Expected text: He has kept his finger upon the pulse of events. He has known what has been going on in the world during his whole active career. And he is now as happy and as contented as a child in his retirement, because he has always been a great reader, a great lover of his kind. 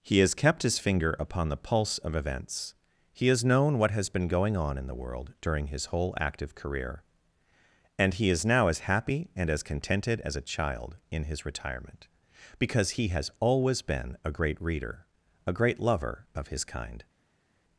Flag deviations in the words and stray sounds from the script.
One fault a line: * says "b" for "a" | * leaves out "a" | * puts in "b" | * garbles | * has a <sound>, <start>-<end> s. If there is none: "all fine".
all fine